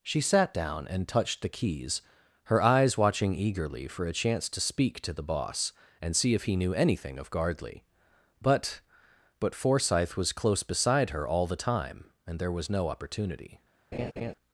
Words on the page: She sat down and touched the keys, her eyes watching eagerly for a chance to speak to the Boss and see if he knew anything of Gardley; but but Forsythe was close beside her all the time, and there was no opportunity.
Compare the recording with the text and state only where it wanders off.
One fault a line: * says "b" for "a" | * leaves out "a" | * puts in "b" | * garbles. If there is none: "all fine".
all fine